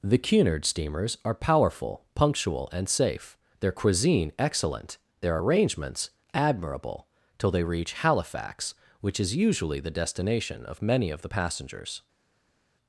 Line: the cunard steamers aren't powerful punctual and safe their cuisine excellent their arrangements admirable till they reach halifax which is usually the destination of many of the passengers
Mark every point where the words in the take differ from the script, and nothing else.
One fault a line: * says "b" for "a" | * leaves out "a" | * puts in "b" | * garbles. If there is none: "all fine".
* says "are" for "aren't"